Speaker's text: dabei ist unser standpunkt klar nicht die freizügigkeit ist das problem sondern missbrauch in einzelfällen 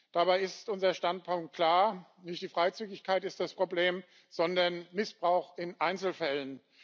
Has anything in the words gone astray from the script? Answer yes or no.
no